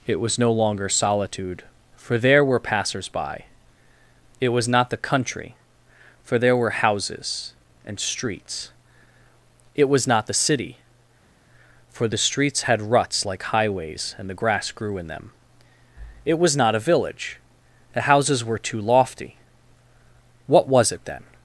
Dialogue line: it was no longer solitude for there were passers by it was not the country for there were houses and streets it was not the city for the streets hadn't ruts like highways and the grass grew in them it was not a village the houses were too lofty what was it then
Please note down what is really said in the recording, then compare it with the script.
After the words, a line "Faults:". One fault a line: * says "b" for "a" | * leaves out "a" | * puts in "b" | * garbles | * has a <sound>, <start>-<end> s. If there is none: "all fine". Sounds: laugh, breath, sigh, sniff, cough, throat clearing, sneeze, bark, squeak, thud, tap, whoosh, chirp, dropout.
it was no longer solitude for there were passers by it was not the country for there were houses and streets it was not the city for the streets had ruts like highways and the grass grew in them it was not a village the houses were too lofty what was it then
Faults:
* says "had" for "hadn't"